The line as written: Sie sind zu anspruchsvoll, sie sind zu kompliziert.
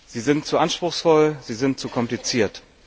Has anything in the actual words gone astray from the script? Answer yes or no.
no